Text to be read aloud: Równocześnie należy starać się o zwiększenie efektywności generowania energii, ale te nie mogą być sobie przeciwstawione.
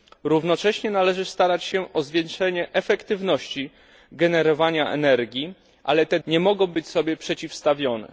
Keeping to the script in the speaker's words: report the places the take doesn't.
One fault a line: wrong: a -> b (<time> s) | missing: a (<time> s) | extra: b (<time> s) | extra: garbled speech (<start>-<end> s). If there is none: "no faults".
no faults